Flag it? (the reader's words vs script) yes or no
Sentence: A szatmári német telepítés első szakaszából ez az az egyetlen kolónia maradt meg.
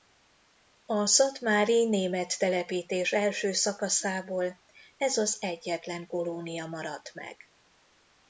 yes